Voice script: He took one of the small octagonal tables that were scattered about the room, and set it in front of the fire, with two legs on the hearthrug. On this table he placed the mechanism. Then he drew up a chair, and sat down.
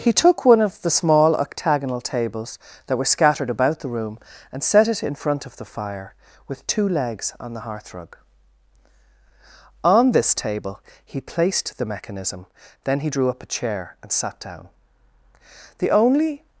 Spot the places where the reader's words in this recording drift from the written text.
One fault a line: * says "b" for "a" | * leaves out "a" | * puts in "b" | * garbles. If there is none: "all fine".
* puts in "The only"